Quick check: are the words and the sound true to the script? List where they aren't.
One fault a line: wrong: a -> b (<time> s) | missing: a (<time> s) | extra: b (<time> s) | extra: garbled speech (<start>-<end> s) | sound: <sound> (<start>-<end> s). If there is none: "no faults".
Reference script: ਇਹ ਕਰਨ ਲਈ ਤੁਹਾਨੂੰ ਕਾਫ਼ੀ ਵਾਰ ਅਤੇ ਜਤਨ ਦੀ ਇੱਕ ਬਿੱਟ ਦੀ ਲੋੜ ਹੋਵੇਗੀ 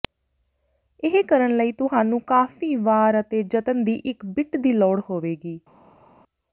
no faults